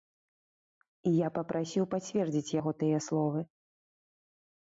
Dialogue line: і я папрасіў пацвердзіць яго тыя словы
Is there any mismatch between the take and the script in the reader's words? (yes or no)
no